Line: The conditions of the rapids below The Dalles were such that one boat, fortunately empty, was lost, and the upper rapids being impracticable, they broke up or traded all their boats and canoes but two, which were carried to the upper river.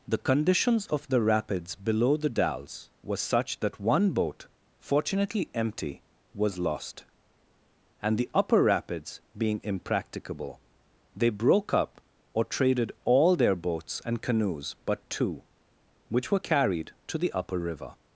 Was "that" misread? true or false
false